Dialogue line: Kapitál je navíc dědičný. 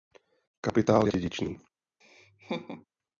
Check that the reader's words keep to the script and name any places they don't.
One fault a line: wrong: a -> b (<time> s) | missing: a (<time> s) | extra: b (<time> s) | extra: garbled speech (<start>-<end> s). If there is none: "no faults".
missing: navíc (1.1 s)